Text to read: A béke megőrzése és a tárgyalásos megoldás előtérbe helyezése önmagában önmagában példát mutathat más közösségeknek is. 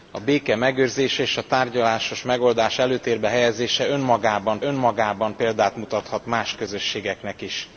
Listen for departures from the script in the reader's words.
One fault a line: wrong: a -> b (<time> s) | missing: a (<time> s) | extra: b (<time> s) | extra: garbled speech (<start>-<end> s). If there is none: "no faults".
no faults